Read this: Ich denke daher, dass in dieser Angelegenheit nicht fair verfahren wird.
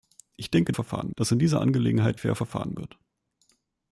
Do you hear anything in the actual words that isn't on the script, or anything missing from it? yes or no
yes